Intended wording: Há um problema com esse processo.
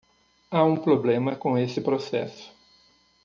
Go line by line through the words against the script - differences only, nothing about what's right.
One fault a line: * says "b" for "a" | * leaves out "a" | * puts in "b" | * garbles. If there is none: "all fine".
all fine